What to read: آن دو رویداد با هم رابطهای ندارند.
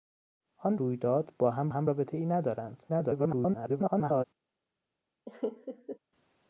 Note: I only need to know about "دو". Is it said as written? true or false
false